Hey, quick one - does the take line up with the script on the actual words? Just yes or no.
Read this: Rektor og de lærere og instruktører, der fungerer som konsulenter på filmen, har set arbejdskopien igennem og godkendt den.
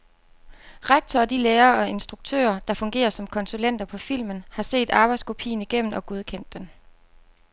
yes